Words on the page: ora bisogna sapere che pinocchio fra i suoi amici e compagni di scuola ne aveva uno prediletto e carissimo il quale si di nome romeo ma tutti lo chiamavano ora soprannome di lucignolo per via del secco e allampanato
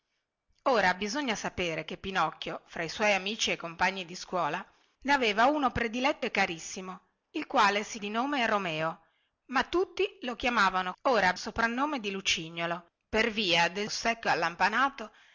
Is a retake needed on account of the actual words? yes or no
no